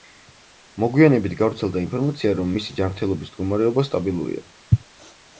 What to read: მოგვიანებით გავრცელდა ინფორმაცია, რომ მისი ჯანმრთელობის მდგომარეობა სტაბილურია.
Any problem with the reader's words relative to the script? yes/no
no